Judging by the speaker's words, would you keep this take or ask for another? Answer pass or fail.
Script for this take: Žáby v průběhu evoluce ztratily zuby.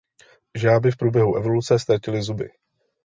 pass